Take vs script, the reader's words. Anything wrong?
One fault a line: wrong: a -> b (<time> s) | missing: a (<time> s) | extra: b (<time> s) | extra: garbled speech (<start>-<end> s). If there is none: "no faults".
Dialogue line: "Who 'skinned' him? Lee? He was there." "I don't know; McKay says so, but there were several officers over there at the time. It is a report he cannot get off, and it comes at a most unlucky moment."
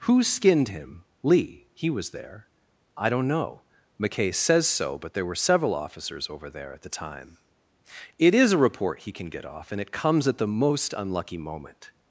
wrong: cannot -> can (9.1 s)
wrong: a -> the (10.4 s)